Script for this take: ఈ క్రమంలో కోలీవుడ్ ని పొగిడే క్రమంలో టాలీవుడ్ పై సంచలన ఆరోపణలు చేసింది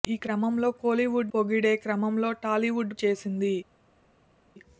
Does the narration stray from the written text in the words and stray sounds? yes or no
yes